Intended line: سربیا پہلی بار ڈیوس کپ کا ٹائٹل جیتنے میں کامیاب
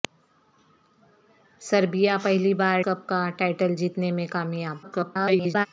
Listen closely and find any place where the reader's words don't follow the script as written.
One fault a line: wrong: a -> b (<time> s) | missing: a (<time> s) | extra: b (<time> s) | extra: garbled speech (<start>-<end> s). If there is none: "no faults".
missing: ڈیوس (2.8 s)
extra: garbled speech (4.8-5.7 s)